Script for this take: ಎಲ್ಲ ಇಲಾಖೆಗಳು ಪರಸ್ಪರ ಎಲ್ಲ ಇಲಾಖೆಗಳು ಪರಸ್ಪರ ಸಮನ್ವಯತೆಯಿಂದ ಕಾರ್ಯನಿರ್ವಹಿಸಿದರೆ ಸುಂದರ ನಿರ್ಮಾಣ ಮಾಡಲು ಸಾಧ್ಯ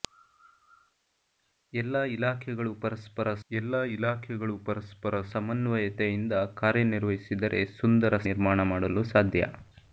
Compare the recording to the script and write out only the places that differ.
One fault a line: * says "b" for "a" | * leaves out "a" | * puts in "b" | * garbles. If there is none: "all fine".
all fine